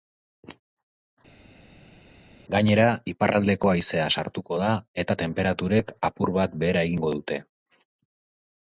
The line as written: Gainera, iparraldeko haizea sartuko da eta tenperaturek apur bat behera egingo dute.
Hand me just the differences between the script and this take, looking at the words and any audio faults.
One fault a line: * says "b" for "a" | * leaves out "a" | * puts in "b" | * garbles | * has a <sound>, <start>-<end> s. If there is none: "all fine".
all fine